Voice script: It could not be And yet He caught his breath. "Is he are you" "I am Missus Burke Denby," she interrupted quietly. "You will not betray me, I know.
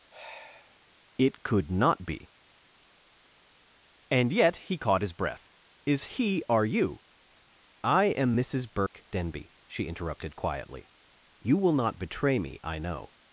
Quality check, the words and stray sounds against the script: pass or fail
fail